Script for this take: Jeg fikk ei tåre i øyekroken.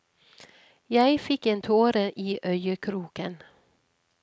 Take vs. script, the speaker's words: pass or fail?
fail